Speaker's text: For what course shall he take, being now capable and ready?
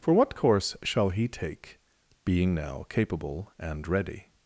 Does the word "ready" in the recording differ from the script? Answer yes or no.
no